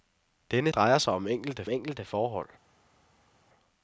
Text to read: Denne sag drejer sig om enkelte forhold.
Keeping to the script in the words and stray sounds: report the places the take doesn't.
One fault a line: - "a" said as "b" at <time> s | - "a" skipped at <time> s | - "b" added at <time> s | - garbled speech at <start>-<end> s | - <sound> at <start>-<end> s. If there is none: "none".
- "sag" skipped at 0.7 s
- "enkelte" added at 1.7 s